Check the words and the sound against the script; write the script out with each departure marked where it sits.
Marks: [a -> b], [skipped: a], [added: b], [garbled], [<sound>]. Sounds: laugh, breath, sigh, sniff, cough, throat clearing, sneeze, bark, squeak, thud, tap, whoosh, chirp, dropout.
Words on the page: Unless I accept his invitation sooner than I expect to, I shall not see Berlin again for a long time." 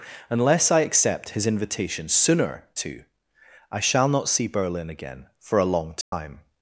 Unless I accept his invitation sooner [skipped: than I expect] to, I shall not see Berlin again for a long time." [dropout]